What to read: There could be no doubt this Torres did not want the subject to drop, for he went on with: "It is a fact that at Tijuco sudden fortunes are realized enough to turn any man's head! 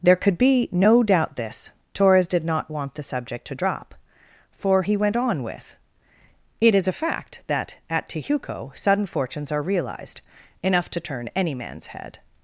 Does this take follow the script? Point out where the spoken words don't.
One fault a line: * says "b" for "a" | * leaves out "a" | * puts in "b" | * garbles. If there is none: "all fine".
all fine